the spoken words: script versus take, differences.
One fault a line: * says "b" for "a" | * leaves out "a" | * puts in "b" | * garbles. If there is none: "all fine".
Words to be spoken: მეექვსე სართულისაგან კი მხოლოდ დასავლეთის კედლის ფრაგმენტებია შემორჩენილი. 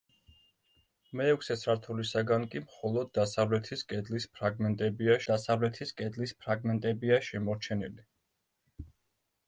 * puts in "დასავლეთის კედლის ფრაგმენტებია"